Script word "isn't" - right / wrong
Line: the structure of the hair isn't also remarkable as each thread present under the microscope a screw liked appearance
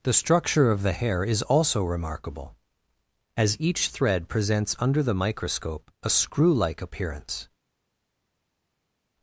wrong